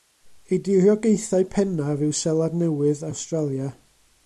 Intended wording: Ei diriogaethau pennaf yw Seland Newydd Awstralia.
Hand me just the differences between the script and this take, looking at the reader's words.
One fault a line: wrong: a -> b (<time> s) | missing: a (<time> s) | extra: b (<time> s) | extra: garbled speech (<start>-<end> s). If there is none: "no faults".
no faults